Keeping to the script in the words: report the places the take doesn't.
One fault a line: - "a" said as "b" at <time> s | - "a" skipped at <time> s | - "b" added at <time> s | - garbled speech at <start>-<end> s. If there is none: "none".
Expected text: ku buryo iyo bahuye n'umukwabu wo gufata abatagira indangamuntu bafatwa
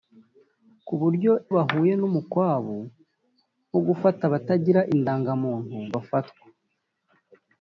- "iyo" skipped at 1.3 s